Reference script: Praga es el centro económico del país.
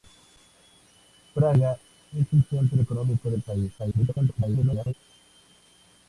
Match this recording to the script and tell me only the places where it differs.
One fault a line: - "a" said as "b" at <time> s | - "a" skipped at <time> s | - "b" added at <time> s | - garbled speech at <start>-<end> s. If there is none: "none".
- garbled speech at 3.8-4.9 s